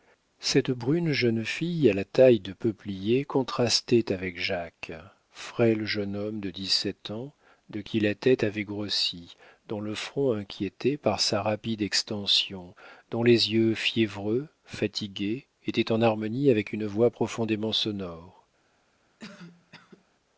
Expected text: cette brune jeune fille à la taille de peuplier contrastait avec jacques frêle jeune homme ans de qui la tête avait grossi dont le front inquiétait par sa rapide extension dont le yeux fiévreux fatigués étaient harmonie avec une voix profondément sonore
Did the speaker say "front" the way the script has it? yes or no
yes